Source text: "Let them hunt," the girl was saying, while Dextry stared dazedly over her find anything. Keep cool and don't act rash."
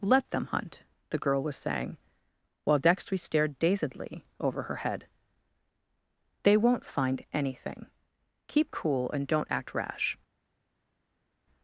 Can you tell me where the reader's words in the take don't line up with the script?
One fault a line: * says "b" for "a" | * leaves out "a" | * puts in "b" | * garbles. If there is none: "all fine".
* puts in "head They won't"